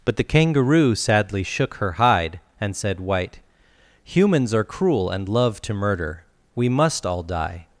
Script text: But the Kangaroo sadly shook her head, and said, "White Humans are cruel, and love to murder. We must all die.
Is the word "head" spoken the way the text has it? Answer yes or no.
no